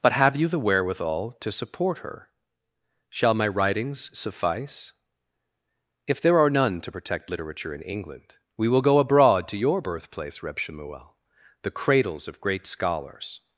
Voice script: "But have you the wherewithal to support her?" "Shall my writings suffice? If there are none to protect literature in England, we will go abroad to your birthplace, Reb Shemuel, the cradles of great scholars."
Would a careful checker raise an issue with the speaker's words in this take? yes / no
no